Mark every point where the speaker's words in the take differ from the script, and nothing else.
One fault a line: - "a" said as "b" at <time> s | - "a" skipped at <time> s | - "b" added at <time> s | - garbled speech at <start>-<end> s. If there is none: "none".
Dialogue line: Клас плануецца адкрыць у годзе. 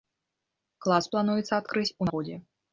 none